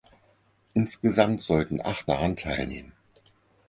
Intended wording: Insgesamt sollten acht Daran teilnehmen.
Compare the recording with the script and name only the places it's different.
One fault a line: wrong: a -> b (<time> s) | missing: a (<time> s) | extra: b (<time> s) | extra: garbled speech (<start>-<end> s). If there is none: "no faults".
no faults